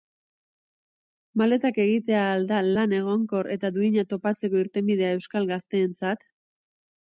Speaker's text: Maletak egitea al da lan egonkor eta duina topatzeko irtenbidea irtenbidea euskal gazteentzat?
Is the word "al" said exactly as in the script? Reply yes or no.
yes